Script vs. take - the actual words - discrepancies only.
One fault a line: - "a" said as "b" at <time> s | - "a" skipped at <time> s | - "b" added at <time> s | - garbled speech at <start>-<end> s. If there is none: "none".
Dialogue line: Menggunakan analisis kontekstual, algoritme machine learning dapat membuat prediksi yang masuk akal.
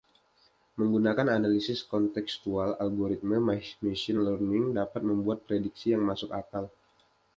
none